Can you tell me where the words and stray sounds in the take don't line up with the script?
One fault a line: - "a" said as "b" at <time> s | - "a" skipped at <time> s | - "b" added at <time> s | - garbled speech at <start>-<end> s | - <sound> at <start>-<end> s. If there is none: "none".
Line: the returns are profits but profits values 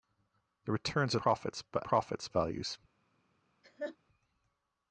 - laugh at 3.6-4.0 s